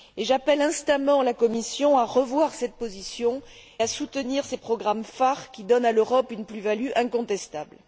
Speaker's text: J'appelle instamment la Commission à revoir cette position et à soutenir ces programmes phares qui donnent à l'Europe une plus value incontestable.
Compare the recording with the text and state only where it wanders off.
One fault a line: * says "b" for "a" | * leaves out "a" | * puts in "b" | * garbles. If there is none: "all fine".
* leaves out "et"